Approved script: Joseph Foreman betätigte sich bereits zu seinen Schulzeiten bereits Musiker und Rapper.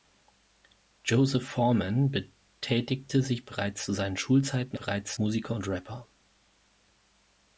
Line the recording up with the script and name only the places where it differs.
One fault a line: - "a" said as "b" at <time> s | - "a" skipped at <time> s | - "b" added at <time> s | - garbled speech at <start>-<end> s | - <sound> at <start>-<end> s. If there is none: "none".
none